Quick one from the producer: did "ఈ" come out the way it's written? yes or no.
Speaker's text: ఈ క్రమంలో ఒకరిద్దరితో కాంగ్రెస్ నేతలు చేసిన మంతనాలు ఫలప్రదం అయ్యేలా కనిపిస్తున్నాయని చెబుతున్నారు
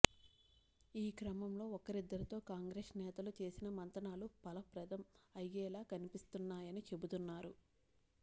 yes